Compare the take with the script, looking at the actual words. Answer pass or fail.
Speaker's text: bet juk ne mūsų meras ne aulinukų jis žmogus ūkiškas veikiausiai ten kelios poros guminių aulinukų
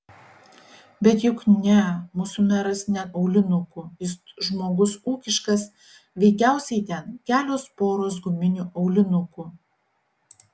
pass